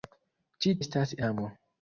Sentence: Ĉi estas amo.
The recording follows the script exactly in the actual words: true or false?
true